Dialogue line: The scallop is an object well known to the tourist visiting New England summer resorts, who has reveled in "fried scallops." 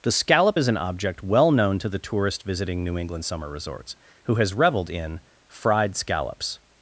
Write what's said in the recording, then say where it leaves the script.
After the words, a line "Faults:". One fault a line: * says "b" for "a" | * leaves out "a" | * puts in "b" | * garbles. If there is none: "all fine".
The scallop is an object well known to the tourist visiting New England summer resorts, who has reveled in "fried scallops."
Faults:
all fine